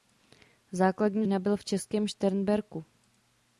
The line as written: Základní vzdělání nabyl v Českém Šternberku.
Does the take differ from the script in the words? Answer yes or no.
yes